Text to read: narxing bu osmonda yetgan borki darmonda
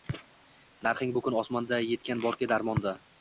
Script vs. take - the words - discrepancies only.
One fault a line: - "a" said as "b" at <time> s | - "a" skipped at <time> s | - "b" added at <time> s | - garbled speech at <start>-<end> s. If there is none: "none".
- "kun" added at 1.2 s